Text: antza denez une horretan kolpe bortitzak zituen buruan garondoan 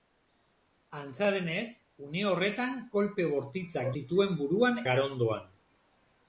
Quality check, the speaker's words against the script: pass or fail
pass